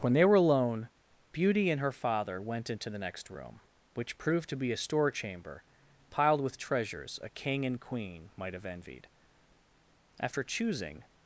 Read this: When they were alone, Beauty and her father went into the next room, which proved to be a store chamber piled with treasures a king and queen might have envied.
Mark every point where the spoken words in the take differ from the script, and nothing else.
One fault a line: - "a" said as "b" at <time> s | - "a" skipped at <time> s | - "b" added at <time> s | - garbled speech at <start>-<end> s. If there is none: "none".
- "After choosing" added at 10.2 s